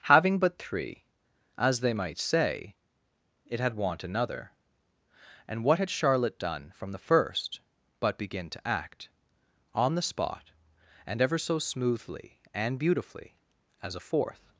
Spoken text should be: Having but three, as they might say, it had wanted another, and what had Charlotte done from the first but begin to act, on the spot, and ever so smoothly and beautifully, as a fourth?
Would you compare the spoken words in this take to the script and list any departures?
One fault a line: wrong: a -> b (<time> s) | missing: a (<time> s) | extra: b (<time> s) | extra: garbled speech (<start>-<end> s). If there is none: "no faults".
wrong: wanted -> want (3.8 s)